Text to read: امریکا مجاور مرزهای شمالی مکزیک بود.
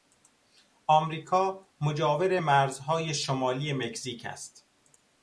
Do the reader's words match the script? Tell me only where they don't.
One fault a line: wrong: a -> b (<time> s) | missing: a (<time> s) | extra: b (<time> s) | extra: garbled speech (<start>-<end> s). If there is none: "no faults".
wrong: بود -> است (4.3 s)